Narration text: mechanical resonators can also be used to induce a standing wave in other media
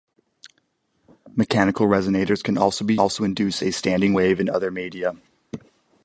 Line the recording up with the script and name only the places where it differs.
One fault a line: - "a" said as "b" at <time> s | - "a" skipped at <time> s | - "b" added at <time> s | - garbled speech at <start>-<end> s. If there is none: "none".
- "used" said as "also" at 3.0 s